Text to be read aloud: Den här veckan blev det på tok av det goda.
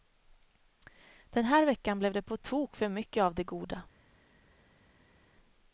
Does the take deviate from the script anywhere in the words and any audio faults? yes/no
yes